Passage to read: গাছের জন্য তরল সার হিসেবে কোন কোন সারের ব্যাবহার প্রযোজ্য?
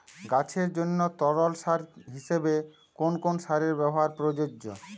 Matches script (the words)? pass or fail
pass